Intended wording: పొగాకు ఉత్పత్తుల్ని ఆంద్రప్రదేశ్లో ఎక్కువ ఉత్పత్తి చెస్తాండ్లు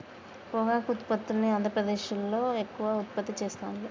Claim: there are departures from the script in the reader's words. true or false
false